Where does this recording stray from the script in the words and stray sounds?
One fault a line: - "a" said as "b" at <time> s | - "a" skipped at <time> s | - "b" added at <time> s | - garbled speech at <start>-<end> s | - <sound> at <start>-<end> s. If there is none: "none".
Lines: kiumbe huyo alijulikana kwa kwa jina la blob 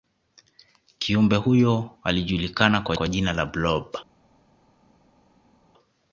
none